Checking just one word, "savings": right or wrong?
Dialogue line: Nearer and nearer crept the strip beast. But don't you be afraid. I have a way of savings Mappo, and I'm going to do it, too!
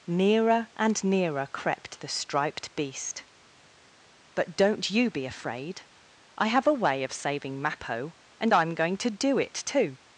wrong